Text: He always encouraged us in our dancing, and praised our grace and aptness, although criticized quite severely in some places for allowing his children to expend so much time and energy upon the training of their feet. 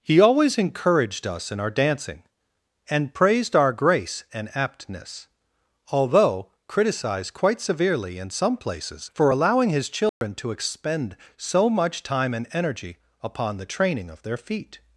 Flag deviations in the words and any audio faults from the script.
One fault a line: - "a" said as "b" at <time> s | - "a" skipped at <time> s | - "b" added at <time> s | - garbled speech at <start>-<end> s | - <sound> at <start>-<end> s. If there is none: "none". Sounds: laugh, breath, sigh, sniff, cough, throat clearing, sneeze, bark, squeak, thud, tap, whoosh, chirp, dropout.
- dropout at 10.1-10.2 s